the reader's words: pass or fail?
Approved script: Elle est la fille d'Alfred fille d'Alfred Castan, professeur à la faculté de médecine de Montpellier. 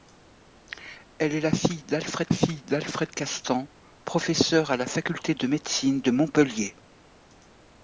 pass